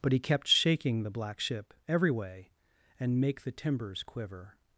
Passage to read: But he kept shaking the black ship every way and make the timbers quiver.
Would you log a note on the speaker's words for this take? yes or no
no